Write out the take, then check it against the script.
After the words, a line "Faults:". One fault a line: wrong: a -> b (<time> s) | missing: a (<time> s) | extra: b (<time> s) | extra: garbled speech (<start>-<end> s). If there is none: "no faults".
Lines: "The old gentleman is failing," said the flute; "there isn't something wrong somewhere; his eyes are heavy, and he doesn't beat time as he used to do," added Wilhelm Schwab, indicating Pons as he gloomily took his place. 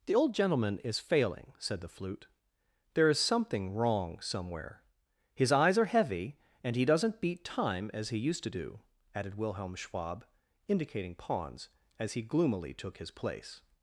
"The old gentleman is failing," said the flute; "there is something wrong somewhere; his eyes are heavy, and he doesn't beat time as he used to do," added Wilhelm Schwab, indicating Pons as he gloomily took his place.
Faults:
wrong: isn't -> is (3.1 s)